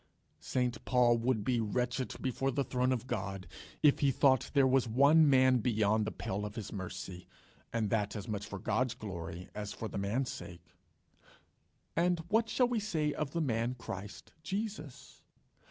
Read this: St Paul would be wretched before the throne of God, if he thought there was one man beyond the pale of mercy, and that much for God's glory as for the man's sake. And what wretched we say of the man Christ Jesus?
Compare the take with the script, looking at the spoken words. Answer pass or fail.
fail